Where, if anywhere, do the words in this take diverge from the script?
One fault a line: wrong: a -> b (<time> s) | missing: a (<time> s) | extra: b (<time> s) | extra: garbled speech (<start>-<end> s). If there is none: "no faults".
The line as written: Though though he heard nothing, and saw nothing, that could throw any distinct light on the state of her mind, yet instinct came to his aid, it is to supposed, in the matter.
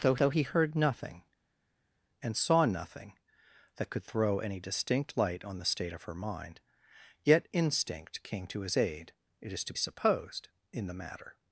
no faults